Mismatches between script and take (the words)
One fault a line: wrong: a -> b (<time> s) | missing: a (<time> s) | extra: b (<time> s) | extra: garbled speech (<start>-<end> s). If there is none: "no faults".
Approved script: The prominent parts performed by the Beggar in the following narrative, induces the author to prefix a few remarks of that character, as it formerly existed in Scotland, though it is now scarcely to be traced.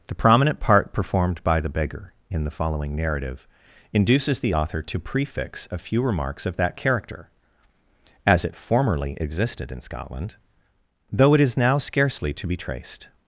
wrong: parts -> part (0.6 s)